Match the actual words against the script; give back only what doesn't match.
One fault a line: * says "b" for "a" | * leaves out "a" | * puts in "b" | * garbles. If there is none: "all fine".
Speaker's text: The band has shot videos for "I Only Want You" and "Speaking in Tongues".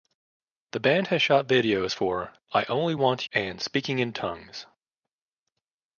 * leaves out "You"